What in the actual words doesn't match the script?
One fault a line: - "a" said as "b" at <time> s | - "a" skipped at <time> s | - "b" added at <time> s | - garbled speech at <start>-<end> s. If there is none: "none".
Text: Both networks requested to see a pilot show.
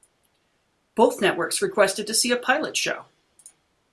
none